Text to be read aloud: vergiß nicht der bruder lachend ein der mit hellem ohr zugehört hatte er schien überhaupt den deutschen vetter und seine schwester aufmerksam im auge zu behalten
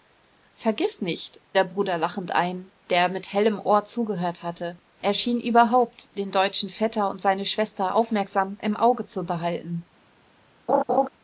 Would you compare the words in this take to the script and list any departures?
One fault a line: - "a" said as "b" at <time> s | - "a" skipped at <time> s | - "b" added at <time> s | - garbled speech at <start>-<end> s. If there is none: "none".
none